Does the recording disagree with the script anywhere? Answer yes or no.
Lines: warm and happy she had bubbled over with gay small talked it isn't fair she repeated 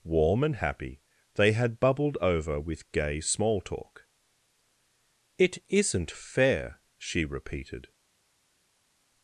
yes